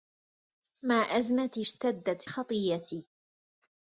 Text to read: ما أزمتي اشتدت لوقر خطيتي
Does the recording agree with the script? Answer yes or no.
no